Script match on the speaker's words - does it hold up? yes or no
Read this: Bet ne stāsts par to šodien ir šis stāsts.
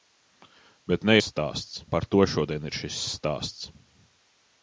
yes